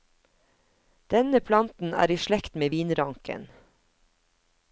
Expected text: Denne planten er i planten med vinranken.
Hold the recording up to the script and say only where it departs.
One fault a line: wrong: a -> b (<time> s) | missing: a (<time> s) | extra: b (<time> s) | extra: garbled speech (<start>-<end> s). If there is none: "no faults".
wrong: planten -> slekt (2.2 s)